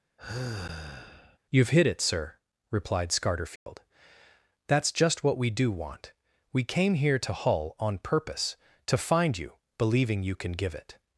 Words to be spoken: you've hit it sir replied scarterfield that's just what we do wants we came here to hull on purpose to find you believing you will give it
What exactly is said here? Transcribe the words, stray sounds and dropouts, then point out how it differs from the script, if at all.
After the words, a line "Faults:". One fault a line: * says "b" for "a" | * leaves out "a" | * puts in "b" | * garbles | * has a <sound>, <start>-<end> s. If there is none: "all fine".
you've hit it sir replied scarterfield that's just what we do want we came here to hull on purpose to find you believing you can give it
Faults:
* has a sigh, 0.2-1.4 s
* has a dropout, 3.6-3.7 s
* says "want" for "wants"
* says "can" for "will"